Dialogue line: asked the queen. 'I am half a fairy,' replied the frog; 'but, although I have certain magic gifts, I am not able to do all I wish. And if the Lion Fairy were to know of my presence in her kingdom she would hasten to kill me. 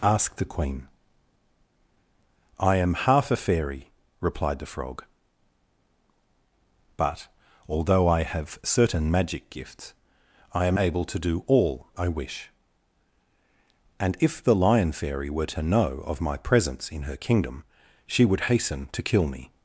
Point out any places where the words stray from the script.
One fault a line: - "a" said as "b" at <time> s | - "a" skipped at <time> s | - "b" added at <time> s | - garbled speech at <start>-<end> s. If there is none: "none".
- "not" skipped at 10.8 s